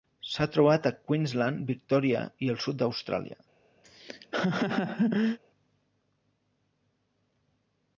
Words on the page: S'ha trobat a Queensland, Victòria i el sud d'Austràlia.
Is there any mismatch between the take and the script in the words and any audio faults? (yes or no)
yes